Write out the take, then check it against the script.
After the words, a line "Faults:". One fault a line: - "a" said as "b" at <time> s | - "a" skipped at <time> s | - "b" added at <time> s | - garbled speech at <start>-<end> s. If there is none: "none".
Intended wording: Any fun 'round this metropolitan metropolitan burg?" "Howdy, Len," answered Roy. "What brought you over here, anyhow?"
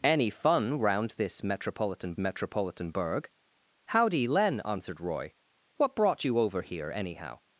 Any fun 'round this metropolitan metropolitan burg?" "Howdy, Len," answered Roy. "What brought you over here, anyhow?"
Faults:
none